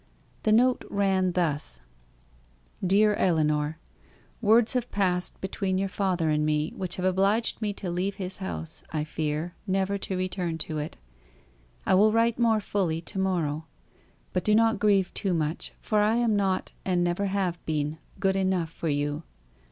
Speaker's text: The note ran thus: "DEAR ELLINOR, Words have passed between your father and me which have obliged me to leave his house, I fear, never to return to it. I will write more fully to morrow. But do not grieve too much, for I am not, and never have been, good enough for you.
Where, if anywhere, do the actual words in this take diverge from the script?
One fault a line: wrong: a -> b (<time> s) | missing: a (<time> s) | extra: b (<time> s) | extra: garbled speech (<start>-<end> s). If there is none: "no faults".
no faults